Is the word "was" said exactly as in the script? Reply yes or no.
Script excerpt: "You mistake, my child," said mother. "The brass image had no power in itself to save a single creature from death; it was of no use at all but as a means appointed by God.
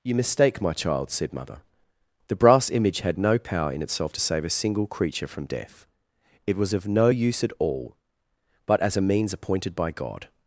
yes